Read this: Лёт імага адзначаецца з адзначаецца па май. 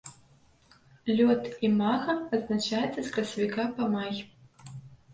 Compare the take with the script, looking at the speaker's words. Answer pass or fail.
fail